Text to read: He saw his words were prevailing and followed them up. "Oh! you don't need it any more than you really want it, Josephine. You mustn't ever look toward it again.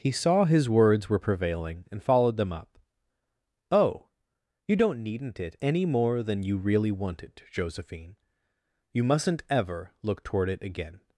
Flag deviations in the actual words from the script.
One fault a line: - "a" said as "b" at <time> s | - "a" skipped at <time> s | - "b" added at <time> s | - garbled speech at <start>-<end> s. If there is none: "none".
- "need" said as "needn't" at 5.0 s